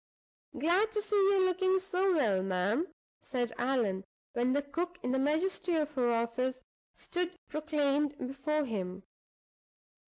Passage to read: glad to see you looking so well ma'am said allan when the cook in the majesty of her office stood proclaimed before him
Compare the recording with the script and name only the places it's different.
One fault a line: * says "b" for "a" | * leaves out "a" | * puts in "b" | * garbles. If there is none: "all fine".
all fine